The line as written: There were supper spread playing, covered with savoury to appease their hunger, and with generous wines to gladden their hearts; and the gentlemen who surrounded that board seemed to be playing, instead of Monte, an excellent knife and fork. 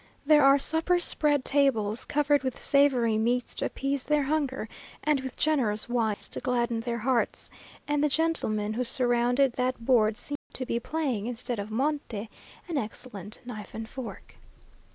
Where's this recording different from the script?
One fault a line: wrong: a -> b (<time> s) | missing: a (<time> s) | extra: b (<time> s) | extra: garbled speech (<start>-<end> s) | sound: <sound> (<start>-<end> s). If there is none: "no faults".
wrong: were -> are (0.4 s)
wrong: playing -> tables (1.4 s)
extra: meats (3.2 s)
sound: dropout (6.1-6.2 s)
sound: dropout (10.4-10.5 s)